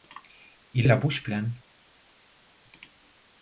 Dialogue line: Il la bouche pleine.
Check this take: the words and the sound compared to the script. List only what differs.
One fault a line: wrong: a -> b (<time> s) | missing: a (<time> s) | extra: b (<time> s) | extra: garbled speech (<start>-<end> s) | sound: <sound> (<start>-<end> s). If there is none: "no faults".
no faults